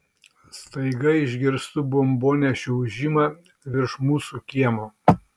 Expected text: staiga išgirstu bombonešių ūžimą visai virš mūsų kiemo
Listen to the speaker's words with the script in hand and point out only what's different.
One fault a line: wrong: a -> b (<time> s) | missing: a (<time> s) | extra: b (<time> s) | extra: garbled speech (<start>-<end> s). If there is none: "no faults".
missing: visai (3.3 s)